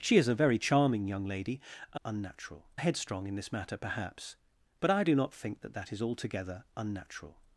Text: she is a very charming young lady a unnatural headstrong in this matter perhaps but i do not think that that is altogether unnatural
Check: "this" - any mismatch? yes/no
no